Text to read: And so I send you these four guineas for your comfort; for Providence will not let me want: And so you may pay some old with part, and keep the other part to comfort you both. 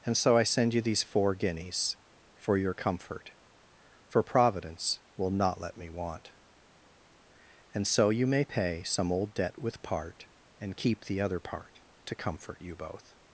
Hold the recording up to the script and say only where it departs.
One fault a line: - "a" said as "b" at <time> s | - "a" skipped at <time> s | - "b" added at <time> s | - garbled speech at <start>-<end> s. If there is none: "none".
- "debt" added at 9.3 s